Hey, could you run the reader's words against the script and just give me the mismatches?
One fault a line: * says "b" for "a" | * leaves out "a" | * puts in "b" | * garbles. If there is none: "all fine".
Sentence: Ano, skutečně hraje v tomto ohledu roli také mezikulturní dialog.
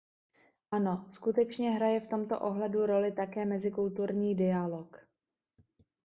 all fine